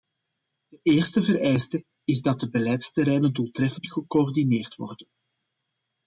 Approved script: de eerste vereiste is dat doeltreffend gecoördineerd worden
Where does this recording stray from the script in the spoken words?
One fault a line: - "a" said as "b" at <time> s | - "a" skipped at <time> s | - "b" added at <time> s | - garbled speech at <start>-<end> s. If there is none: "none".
- "de beleidsterreinen" added at 2.4 s